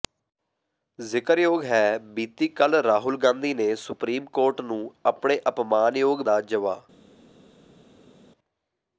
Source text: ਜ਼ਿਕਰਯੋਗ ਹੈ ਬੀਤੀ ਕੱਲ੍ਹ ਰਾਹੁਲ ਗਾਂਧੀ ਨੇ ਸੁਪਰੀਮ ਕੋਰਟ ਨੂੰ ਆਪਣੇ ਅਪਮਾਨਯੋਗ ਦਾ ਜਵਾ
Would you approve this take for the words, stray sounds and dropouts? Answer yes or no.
yes